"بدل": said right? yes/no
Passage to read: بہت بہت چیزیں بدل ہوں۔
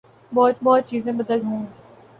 yes